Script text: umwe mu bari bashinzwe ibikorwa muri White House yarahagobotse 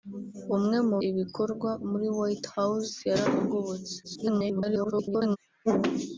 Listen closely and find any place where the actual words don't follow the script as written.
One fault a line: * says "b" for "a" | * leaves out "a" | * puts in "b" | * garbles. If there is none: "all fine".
* leaves out "bari bashinzwe"
* garbles